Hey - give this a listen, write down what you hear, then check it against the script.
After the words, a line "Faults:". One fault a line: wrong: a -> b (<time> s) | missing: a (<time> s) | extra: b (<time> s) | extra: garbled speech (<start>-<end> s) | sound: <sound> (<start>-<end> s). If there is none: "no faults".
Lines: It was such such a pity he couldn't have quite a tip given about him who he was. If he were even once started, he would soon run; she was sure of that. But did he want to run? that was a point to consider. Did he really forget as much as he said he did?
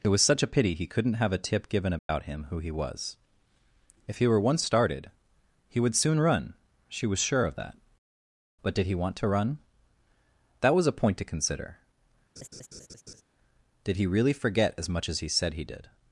It was such a pity he couldn't have a tip given about him who he was. If he were once started, he would soon run; she was sure of that. But did he want to run? that was a point to consider. Did he really forget as much as he said he did?
Faults:
missing: such (0.4 s)
missing: quite (1.3 s)
sound: dropout (2.0-2.1 s)
missing: even (4.4 s)
sound: laugh (12.4-13.2 s)